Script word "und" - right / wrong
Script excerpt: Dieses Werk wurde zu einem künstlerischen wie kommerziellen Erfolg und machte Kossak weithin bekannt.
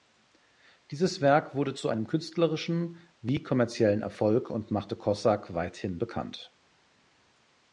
right